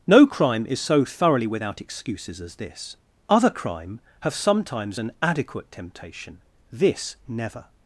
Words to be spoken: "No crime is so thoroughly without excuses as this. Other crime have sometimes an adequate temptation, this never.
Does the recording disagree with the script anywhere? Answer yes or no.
no